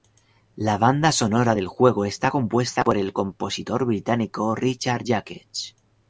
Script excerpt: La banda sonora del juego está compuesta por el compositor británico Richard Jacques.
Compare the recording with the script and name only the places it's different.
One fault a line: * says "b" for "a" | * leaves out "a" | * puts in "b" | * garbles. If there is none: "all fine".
all fine